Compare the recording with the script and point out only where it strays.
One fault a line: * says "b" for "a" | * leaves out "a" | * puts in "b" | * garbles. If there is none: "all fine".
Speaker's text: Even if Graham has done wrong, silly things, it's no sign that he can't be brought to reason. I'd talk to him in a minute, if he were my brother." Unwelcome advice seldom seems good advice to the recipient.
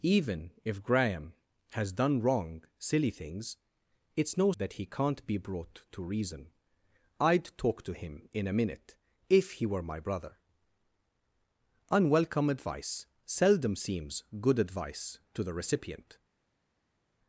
* leaves out "sign"